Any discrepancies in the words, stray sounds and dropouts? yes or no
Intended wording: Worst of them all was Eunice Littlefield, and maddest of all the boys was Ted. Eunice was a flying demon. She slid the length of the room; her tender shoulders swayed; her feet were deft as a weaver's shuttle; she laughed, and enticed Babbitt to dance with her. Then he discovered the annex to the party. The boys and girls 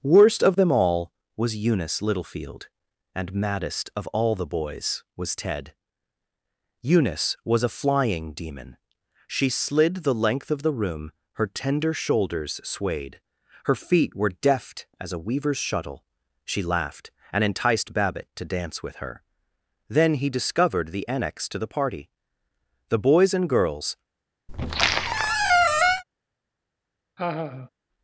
yes